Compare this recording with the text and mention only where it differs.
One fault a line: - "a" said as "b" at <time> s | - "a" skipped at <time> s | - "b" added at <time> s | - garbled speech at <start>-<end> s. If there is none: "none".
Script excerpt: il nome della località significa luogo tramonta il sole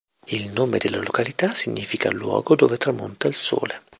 - "dove" added at 2.5 s